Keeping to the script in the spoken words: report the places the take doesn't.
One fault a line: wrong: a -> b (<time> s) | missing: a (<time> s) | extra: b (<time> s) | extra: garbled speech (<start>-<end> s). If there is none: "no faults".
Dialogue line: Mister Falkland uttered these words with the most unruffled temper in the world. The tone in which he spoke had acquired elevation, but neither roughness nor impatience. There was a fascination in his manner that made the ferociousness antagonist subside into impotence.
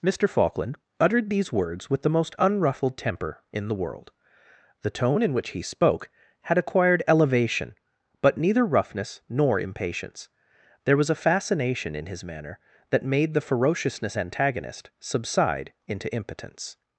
no faults